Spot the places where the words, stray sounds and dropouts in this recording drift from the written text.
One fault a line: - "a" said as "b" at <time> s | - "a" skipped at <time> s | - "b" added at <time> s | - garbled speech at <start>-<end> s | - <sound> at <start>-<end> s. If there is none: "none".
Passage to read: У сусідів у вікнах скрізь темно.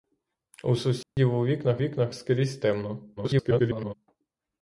- dropout at 1.0-1.2 s
- "вікнах" added at 1.8 s
- garbled speech at 3.2-3.9 s